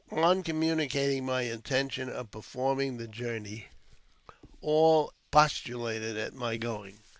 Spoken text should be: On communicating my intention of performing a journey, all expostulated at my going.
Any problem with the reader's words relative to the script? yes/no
yes